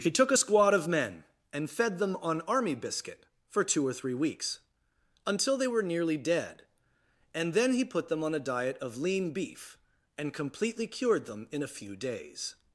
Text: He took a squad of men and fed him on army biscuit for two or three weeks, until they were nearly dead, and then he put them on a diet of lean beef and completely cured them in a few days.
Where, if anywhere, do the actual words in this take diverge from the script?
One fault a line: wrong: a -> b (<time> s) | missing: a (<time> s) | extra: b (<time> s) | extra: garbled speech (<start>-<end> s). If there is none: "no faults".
wrong: him -> them (2.0 s)